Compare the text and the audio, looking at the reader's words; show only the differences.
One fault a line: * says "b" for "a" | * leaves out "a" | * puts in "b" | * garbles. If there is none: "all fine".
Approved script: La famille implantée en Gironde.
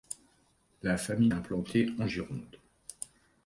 all fine